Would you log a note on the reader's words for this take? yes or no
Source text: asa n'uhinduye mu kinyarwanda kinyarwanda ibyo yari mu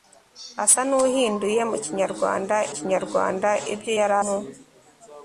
no